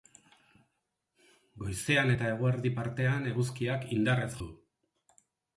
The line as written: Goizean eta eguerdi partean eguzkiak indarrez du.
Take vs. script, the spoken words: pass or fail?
pass